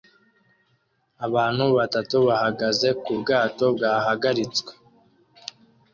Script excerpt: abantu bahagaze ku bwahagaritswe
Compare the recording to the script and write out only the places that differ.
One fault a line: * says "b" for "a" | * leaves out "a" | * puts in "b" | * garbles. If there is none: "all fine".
* puts in "batatu"
* puts in "bwato"